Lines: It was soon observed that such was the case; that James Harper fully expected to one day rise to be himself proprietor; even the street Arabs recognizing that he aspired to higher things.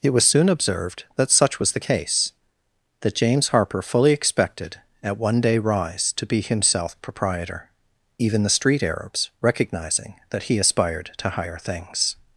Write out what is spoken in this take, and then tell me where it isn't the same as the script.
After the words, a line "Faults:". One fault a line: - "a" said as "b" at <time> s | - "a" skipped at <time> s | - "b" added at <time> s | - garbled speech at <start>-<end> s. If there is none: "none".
It was soon observed that such was the case; that James Harper fully expected at one day rise to be himself proprietor; even the street Arabs recognizing that he aspired to higher things.
Faults:
- "to" said as "at" at 5.0 s